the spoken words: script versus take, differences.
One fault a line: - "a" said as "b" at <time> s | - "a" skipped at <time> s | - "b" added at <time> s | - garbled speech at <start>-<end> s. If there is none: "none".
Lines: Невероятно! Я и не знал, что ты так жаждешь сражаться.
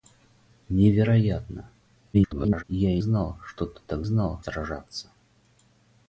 - garbled speech at 2.1-2.6 s
- "не" skipped at 3.0 s
- "жаждешь" said as "знал" at 4.0 s